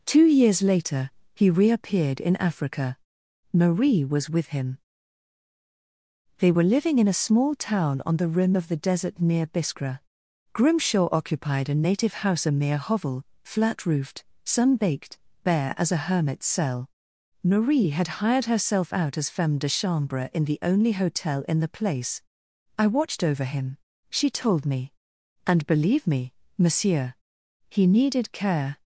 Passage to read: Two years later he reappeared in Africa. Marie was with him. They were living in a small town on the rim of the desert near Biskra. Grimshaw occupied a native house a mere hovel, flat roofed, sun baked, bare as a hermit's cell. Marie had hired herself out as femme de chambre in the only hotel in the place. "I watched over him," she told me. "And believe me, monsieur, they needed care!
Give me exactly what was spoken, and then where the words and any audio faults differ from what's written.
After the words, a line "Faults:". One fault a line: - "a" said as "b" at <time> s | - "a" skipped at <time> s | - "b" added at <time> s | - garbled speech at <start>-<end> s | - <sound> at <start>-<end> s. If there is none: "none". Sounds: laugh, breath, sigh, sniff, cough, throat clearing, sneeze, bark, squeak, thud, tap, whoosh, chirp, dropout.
Two years later he reappeared in Africa. Marie was with him. They were living in a small town on the rim of the desert near Biskra. Grimshaw occupied a native house a mere hovel, flat roofed, sun baked, bare as a hermit's cell. Marie had hired herself out as femme de chambre in the only hotel in the place. "I watched over him," she told me. "And believe me, monsieur, he needed care!
Faults:
- "they" said as "he" at 27.7 s